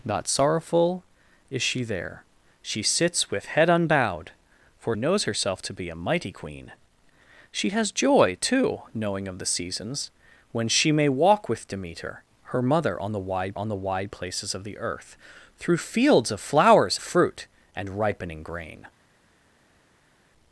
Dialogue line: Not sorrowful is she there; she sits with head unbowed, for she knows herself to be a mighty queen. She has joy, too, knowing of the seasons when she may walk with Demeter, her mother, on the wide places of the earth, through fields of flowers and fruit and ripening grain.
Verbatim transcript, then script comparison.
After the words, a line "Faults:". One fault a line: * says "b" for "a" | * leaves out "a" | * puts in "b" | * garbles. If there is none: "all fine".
Not sorrowful is she there; she sits with head unbowed, for knows herself to be a mighty queen. She has joy, too, knowing of the seasons when she may walk with Demeter, her mother, on the wide on the wide places of the earth, through fields of flowers fruit and ripening grain.
Faults:
* leaves out "she"
* puts in "on the wide"
* leaves out "and"